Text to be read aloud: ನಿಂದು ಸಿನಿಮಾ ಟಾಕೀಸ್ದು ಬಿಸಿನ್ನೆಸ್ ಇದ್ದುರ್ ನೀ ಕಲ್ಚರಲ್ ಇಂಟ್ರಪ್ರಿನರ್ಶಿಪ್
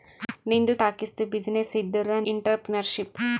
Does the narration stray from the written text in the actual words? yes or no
yes